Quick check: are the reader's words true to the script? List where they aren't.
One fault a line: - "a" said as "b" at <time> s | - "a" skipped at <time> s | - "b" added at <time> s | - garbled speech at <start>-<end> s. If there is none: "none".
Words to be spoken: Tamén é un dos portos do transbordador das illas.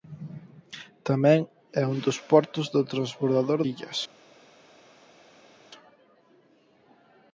- "das" skipped at 3.6 s